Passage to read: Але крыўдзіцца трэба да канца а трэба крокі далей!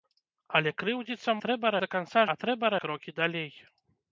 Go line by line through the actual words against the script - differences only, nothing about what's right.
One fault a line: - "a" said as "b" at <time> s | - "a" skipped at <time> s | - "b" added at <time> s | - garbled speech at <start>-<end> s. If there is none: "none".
none